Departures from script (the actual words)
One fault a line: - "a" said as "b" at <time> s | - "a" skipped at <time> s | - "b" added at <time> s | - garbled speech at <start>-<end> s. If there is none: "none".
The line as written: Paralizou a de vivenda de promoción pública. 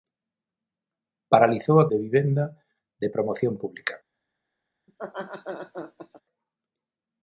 none